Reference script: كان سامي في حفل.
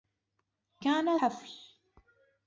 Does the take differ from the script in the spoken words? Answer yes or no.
yes